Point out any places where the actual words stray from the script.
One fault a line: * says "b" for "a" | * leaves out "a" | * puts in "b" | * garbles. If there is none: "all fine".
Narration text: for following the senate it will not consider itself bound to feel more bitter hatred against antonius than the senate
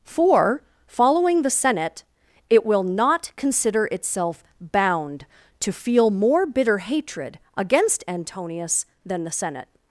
all fine